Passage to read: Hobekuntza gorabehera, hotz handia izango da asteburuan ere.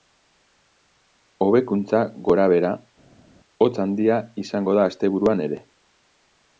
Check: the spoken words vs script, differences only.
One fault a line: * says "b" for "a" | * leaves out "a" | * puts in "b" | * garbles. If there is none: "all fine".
all fine